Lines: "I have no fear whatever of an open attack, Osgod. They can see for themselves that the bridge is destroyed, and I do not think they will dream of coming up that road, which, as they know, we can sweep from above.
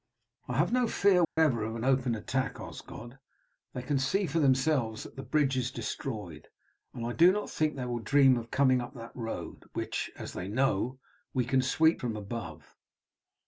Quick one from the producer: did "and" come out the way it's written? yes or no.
yes